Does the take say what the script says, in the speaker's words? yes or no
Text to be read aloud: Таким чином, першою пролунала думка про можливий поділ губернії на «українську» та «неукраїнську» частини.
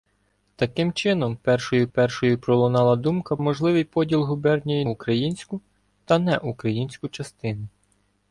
no